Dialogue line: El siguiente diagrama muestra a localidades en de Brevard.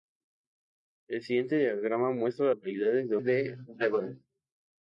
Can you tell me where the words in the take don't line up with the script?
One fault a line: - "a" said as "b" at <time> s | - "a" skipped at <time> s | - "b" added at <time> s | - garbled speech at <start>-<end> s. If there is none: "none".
none